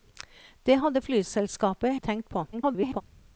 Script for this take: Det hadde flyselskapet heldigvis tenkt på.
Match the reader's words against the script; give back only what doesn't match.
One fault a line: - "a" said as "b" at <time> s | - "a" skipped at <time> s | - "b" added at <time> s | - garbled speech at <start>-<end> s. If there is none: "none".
- "heldigvis" skipped at 1.9 s
- garbled speech at 2.5-3.0 s